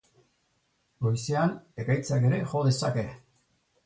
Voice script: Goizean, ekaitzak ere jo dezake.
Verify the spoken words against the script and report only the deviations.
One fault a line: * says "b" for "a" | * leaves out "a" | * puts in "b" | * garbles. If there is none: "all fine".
all fine